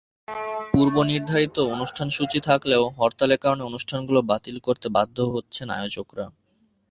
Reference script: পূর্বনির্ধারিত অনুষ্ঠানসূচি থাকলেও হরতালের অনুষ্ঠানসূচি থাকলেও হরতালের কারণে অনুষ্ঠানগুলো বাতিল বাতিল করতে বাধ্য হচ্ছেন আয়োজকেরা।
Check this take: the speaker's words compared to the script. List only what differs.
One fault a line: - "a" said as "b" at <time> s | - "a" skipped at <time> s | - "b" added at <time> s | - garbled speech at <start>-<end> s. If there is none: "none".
- "অনুষ্ঠানসূচি থাকলেও হরতালের" skipped at 3.4 s
- "বাতিল" skipped at 4.6 s